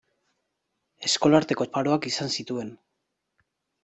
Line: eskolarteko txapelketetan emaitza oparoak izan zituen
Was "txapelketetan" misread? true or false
true